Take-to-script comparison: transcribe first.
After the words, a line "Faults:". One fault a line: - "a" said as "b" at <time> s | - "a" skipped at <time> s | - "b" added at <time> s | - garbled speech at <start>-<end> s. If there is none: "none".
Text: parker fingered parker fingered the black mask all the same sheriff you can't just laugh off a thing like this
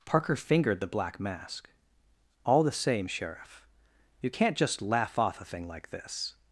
parker fingered the black mask all the same sheriff you can't just laugh off a thing like this
Faults:
- "parker fingered" skipped at 0.8 s